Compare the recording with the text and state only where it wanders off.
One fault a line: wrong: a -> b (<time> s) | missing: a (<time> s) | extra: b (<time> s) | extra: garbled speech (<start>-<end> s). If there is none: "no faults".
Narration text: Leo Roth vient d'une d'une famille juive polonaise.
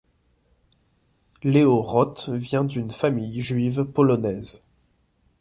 missing: d'une (2.9 s)